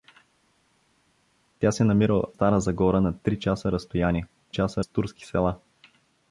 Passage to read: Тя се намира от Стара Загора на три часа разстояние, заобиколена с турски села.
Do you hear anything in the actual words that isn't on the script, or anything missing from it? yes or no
yes